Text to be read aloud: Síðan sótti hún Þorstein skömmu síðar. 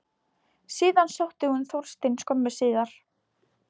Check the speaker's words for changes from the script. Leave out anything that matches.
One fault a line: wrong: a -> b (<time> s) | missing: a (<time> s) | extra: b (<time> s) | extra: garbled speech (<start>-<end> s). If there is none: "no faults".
no faults